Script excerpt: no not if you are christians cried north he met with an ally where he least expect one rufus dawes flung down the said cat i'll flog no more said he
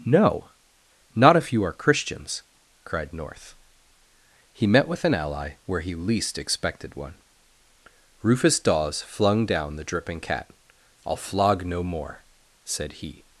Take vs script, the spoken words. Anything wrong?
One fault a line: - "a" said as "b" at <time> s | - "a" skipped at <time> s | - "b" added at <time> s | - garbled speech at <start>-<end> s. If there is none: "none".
- "expect" said as "expected" at 6.4 s
- "said" said as "dripping" at 9.8 s